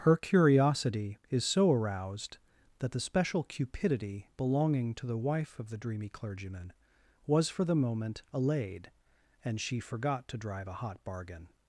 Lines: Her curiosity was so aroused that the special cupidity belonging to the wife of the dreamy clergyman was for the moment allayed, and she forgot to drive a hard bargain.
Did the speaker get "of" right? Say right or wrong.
right